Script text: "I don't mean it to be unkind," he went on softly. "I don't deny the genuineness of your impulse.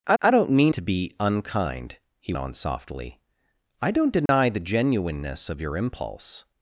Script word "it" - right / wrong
wrong